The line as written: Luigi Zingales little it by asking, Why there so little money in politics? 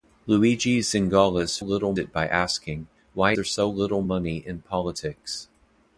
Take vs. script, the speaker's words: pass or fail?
pass